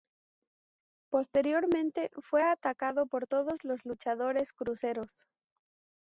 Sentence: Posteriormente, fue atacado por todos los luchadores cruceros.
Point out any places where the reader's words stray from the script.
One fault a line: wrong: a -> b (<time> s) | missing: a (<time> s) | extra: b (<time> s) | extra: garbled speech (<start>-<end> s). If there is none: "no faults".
no faults